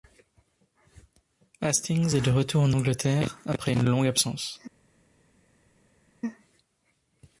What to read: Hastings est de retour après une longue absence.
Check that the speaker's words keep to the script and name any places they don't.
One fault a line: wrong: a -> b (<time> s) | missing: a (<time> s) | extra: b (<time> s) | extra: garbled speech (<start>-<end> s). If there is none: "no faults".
extra: en Angleterre (2.6 s)